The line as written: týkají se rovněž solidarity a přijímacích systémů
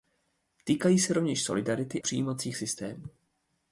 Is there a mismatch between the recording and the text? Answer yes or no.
yes